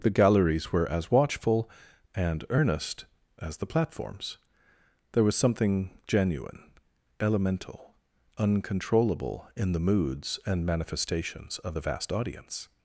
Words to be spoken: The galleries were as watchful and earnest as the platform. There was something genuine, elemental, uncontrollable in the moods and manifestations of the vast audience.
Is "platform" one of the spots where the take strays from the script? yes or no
yes